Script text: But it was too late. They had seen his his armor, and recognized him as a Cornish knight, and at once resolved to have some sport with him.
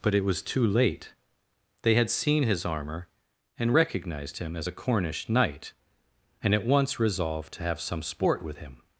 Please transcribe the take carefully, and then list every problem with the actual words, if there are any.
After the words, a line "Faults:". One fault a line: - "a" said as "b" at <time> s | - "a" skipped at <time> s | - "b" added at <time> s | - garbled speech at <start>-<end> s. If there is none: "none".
But it was too late. They had seen his armor, and recognized him as a Cornish knight, and at once resolved to have some sport with him.
Faults:
- "his" skipped at 2.6 s